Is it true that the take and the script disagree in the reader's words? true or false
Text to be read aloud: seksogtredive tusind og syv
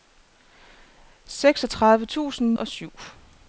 false